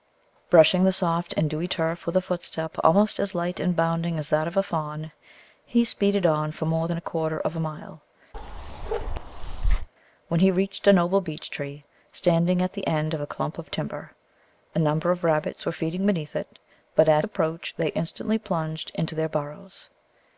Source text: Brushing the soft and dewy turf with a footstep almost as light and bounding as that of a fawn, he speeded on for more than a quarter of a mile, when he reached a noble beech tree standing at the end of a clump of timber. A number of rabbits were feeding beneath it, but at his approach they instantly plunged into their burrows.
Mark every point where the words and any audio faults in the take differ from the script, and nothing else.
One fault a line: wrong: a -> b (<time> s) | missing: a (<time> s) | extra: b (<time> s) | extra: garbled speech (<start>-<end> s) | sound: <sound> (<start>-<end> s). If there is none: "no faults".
sound: bark (8.3-9.9 s)
missing: his (17.2 s)